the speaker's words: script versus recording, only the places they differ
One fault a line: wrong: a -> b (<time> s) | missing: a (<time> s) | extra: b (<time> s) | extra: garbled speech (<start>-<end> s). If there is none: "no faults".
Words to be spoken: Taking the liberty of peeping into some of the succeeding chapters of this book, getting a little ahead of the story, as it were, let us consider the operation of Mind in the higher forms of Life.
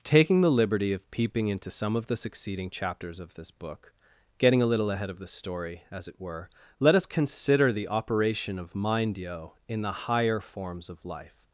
extra: yo (9.2 s)